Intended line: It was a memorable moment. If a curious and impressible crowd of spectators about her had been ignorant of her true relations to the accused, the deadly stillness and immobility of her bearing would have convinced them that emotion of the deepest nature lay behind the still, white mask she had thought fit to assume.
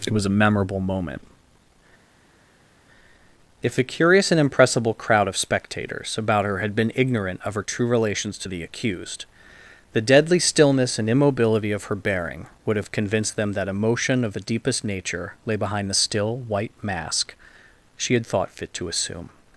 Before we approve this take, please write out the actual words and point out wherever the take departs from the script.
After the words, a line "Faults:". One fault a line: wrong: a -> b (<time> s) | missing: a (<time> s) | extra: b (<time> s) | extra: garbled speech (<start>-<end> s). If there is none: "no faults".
It was a memorable moment. If a curious and impressible crowd of spectators about her had been ignorant of her true relations to the accused, the deadly stillness and immobility of her bearing would have convinced them that emotion of the deepest nature lay behind the still, white mask she had thought fit to assume.
Faults:
no faults